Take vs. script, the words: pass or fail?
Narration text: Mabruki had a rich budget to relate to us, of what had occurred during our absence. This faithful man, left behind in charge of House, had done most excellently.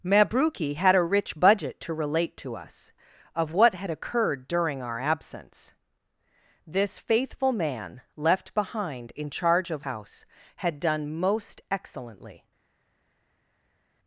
pass